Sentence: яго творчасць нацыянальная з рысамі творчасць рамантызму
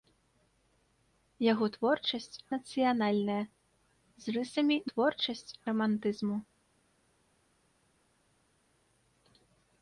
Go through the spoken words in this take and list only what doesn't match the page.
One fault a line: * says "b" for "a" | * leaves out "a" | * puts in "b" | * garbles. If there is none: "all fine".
all fine